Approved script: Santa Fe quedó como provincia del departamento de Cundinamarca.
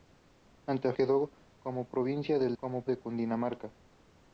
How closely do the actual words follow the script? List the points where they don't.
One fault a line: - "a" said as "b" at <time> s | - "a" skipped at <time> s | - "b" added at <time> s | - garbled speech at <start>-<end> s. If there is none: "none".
- "Fe" skipped at 0.9 s
- "departamento" said as "como" at 2.6 s